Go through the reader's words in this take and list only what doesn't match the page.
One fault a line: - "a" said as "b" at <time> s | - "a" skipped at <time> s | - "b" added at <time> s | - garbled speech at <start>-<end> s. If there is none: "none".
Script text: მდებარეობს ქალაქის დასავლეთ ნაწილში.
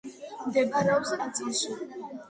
- "ქალაქის დასავლეთ" skipped at 1.1 s